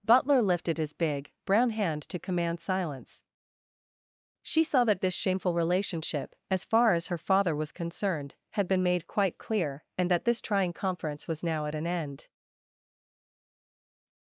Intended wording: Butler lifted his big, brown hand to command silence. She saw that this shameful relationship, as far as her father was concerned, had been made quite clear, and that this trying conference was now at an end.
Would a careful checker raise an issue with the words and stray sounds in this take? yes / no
no